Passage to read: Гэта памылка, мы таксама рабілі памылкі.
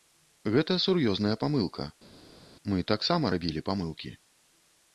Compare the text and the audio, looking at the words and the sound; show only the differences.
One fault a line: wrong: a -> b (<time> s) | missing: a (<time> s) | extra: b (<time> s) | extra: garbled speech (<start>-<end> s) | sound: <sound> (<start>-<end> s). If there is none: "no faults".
extra: сур'ёзная (0.8 s)